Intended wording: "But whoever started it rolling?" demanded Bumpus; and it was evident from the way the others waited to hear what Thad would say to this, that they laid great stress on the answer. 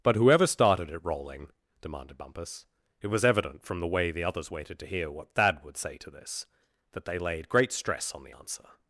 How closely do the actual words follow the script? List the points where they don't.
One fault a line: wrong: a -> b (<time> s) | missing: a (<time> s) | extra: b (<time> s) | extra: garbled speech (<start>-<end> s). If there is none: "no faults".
missing: and (2.7 s)